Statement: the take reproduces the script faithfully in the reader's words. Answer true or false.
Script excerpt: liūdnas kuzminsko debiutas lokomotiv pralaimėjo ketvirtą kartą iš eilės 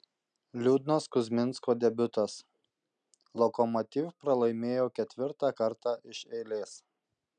true